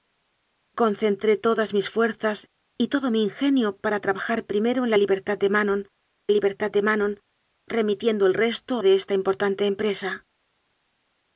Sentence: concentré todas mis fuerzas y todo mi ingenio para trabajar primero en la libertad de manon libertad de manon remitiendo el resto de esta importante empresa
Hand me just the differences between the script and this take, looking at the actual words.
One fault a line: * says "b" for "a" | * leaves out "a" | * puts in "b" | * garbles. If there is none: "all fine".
all fine